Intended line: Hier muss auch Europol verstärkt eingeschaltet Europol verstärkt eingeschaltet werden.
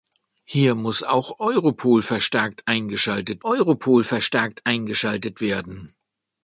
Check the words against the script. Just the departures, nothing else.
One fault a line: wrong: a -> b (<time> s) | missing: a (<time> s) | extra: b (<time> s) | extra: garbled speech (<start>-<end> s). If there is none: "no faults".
no faults